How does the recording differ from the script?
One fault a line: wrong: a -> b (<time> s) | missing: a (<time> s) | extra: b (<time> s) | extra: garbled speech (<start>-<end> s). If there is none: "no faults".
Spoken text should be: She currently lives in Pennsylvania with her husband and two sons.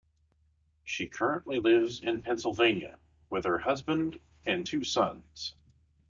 no faults